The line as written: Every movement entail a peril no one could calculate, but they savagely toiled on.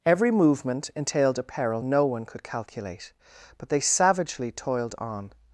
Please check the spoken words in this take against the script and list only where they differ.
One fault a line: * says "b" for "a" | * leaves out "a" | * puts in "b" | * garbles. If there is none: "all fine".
* says "entailed" for "entail"